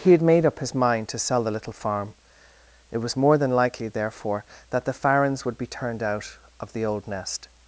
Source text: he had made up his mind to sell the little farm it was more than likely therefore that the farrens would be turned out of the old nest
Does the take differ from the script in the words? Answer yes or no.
no